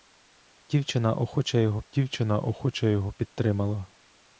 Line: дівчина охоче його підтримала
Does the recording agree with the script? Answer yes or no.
no